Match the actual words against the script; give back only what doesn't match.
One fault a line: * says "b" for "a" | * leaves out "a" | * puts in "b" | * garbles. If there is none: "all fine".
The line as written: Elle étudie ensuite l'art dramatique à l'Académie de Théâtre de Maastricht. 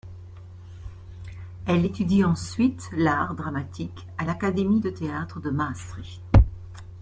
all fine